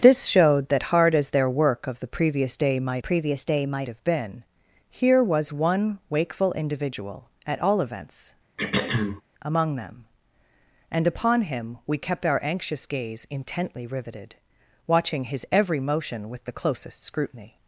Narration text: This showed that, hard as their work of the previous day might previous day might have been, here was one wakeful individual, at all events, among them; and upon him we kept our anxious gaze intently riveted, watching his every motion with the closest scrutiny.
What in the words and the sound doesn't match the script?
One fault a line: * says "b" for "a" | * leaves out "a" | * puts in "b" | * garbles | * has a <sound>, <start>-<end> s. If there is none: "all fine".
* has a throat clearing, 8.6-9.2 s